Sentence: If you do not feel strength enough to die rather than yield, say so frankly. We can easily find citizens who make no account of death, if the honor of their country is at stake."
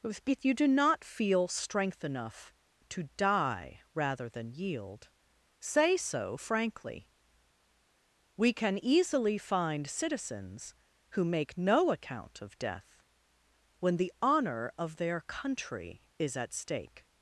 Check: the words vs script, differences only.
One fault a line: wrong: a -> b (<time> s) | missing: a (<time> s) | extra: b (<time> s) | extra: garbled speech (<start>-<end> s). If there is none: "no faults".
wrong: if -> when (13.8 s)